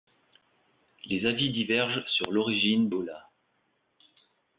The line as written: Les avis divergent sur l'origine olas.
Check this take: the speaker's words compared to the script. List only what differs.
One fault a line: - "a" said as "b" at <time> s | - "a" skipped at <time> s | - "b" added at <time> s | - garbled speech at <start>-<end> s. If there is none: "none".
none